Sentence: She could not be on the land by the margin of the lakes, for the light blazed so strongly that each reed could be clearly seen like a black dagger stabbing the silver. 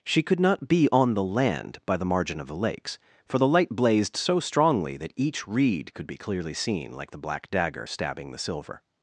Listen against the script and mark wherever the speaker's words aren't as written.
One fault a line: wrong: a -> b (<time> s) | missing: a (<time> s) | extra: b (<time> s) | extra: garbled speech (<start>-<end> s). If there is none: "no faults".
wrong: a -> the (7.1 s)